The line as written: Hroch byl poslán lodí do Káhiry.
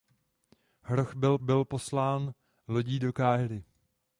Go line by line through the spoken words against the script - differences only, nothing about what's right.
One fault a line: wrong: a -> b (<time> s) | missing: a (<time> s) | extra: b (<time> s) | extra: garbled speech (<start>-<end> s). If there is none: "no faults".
extra: byl (1.4 s)